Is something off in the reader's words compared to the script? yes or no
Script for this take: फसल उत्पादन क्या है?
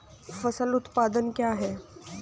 no